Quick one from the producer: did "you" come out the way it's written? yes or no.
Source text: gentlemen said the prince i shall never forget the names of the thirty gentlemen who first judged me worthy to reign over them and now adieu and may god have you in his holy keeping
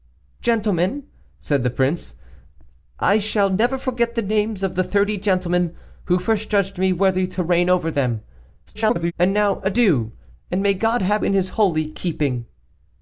no